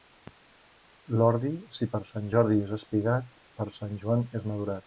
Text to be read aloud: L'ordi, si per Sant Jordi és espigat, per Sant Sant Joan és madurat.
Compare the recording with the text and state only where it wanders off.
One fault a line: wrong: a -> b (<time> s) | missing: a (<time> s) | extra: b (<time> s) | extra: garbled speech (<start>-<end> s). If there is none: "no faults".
missing: Sant (4.0 s)